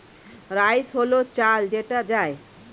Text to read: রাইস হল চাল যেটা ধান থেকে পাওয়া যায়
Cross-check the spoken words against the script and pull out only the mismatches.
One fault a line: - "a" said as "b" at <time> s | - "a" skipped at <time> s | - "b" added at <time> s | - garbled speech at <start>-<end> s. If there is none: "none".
- "ধান থেকে পাওয়া" skipped at 2.0 s